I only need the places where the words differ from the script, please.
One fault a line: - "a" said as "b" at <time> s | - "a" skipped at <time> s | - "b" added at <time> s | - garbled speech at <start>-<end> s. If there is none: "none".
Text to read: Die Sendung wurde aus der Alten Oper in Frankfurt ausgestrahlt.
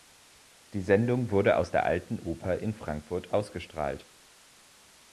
none